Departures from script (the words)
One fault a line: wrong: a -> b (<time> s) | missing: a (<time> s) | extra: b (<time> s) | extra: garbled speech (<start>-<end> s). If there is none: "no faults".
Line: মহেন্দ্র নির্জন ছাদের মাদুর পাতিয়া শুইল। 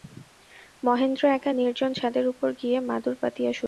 extra: একা (1.4 s)
extra: উপর গিয়া (2.3 s)